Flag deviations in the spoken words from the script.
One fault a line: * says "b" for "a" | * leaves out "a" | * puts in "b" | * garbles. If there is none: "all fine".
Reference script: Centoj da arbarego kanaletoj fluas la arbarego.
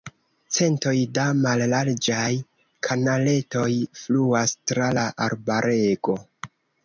* says "mallarĝaj" for "arbarego"
* puts in "tra"